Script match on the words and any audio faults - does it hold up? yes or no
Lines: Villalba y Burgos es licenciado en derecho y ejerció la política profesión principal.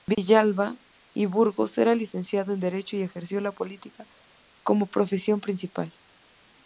no